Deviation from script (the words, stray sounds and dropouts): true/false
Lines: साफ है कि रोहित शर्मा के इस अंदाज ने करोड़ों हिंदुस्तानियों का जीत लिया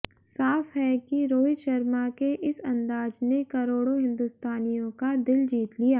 true